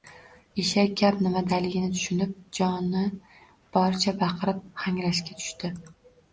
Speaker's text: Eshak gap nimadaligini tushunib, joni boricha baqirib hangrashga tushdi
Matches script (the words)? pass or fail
pass